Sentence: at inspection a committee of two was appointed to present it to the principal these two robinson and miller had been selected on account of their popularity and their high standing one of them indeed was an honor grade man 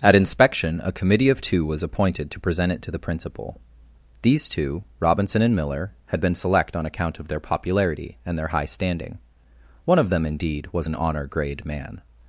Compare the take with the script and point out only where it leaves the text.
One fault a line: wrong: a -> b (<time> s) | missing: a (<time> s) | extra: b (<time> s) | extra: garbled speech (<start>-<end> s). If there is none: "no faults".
wrong: selected -> select (6.3 s)